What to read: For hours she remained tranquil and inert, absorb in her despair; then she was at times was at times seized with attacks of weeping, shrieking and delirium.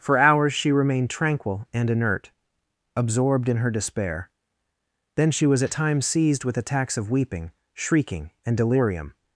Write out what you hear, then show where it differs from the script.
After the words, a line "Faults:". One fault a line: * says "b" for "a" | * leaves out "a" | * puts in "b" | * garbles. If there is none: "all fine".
For hours she remained tranquil and inert, absorbed in her despair; then she was at times seized with attacks of weeping, shrieking and delirium.
Faults:
* says "absorbed" for "absorb"
* leaves out "was at times"